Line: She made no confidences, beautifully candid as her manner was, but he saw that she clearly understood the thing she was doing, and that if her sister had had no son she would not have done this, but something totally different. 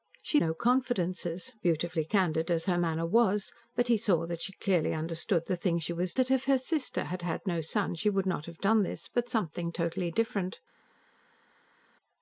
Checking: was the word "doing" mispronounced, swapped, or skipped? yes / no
yes